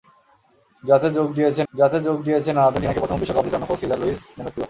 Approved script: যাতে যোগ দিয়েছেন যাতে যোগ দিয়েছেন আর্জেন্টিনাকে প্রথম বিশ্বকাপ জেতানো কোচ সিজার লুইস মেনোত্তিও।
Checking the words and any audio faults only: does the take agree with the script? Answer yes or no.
yes